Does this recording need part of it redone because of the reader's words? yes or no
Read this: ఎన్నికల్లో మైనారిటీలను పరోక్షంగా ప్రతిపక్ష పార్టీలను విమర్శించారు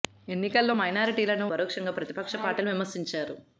no